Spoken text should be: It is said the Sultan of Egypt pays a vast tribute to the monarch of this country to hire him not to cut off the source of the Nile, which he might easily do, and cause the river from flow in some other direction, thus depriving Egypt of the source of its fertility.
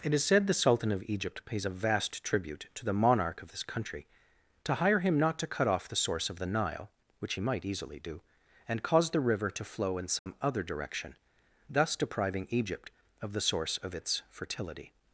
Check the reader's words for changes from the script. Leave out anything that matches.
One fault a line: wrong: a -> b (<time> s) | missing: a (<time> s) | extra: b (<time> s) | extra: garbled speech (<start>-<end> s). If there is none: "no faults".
wrong: from -> to (9.5 s)